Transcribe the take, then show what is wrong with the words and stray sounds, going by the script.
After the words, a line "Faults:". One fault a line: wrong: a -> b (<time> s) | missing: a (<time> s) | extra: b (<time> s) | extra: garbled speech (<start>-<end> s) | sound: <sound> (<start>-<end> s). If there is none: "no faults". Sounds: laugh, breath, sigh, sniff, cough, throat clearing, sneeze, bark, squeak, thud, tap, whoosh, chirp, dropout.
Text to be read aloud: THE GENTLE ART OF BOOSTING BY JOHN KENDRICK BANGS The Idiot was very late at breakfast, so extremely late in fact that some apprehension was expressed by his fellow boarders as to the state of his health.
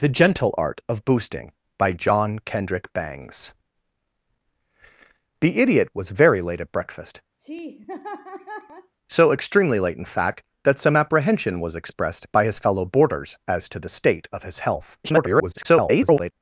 THE GENTLE ART OF BOOSTING BY JOHN KENDRICK BANGS The Idiot was very late at breakfast, so extremely late in fact that some apprehension was expressed by his fellow boarders as to the state of his health. [garbled]
Faults:
sound: laugh (7.4-8.9 s)
extra: garbled speech (15.0-16.3 s)